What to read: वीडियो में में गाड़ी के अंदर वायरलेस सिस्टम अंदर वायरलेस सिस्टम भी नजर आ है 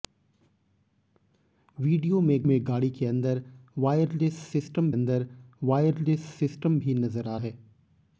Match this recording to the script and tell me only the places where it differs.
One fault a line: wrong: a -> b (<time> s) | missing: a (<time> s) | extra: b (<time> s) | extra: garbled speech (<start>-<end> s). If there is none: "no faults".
no faults